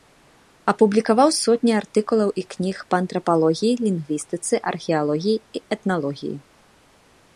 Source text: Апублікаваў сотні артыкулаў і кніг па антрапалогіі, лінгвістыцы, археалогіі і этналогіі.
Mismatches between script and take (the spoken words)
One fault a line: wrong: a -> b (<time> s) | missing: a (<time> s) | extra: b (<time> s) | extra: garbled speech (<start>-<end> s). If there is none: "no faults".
no faults